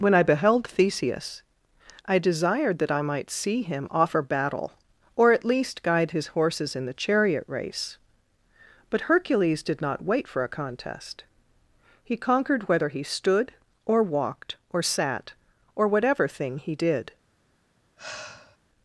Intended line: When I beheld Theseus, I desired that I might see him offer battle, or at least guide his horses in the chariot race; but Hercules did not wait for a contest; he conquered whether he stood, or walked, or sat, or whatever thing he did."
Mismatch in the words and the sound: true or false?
true